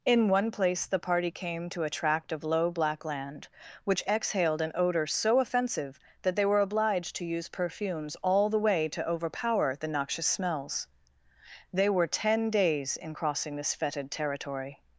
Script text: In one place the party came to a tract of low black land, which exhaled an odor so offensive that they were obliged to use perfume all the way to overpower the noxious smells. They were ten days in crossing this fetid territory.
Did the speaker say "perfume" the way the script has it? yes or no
no